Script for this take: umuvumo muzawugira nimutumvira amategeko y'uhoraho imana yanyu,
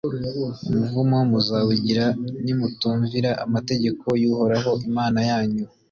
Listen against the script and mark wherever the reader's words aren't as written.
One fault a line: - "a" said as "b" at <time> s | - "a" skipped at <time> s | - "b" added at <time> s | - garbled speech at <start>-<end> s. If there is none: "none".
none